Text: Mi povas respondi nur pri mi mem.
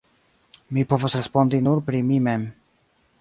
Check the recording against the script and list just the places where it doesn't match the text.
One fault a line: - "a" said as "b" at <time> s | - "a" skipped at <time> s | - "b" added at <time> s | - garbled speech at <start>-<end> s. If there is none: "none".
none